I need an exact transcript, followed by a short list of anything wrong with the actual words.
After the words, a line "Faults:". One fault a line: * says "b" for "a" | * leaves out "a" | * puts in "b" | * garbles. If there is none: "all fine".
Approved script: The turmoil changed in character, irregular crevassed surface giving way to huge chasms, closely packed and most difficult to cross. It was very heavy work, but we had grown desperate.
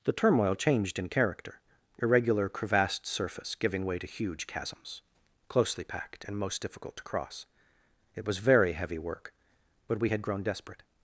The turmoil changed in character, irregular crevassed surface giving way to huge chasms, closely packed and most difficult to cross. It was very heavy work, but we had grown desperate.
Faults:
all fine